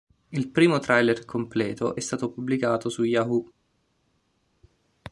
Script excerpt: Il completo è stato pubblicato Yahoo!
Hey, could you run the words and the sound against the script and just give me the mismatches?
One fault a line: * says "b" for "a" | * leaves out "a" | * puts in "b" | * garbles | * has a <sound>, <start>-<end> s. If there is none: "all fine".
* puts in "primo trailer"
* puts in "su"